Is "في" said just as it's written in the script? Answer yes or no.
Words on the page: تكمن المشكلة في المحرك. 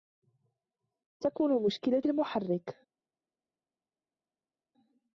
no